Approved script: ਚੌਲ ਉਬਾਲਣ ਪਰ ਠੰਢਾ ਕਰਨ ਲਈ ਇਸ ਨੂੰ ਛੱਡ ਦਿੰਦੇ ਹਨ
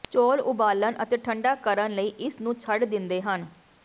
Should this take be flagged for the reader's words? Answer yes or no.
yes